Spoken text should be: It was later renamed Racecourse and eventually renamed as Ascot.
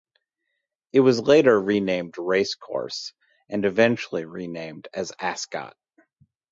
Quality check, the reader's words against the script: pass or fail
pass